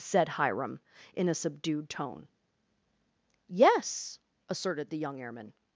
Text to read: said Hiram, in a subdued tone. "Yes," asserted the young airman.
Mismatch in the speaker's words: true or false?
false